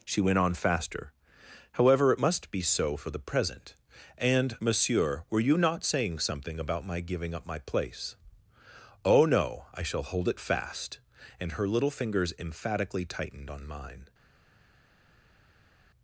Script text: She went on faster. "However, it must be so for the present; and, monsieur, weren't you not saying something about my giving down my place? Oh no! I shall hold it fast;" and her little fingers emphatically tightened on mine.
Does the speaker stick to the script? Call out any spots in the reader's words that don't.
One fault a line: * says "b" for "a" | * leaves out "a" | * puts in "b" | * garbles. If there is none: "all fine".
* says "were" for "weren't"
* says "up" for "down"